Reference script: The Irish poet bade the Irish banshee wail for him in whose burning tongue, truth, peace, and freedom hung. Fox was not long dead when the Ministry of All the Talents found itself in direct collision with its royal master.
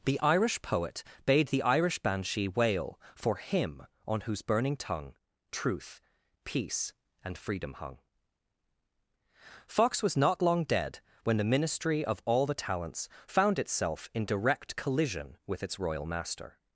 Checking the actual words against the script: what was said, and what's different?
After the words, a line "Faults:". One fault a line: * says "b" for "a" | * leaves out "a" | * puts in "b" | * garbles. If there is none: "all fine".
The Irish poet bade the Irish banshee wail for him on whose burning tongue, truth, peace, and freedom hung. Fox was not long dead when the Ministry of All the Talents found itself in direct collision with its royal master.
Faults:
* says "on" for "in"